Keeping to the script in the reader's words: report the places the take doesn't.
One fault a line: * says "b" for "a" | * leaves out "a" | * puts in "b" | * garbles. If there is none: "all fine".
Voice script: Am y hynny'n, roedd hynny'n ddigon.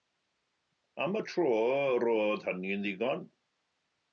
* says "tro" for "hynny'n"